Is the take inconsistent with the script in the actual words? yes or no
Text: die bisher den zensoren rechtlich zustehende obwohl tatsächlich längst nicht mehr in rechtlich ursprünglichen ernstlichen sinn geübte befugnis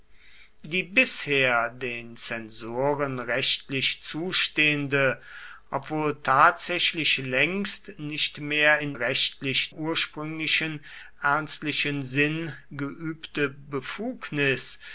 no